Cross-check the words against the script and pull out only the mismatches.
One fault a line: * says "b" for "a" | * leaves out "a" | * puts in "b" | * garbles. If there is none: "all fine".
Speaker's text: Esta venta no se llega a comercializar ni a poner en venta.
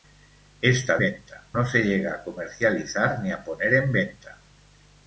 all fine